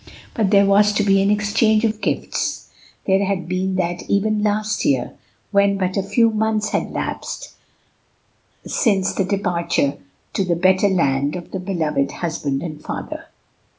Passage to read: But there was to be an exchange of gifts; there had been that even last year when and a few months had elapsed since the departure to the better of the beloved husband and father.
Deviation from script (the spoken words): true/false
true